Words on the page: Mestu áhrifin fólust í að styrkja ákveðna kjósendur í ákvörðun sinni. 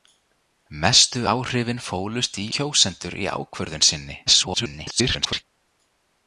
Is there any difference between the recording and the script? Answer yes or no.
yes